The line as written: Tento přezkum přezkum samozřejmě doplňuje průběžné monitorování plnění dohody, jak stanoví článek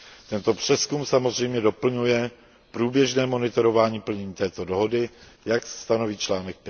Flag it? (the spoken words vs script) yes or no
yes